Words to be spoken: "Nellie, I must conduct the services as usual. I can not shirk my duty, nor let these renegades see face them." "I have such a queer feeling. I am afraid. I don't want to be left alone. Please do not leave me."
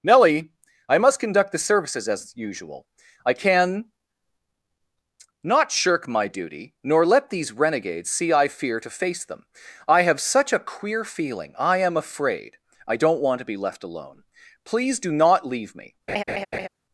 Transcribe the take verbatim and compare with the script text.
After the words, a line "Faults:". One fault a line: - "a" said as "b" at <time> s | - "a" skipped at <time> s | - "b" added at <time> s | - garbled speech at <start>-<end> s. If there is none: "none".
"Nellie, I must conduct the services as usual. I can not shirk my duty, nor let these renegades see I fear to face them." "I have such a queer feeling. I am afraid. I don't want to be left alone. Please do not leave me."
Faults:
- "I fear to" added at 8.3 s